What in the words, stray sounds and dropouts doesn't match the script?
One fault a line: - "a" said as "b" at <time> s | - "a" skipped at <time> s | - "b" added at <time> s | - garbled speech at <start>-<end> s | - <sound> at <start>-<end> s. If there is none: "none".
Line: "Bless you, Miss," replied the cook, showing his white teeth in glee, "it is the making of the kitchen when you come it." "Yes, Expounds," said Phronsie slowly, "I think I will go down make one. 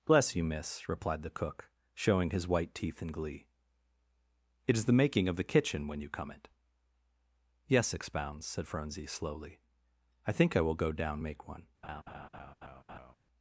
- laugh at 11.8-13.2 s